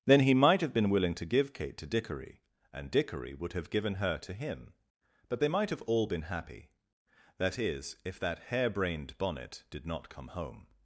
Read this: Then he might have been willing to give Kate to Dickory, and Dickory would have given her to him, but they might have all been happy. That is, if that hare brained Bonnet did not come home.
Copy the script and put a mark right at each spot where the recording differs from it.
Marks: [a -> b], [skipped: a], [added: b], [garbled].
Then he might have been willing to give Kate to Dickory, and Dickory would have given her to him, but they might have all been happy. That is, if that hare brained Bonnet did not come home.